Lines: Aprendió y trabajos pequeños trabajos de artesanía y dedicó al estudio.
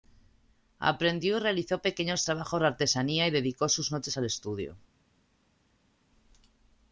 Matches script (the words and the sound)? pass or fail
fail